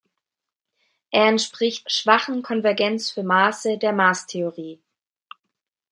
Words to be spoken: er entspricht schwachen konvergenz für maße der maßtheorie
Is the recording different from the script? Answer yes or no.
no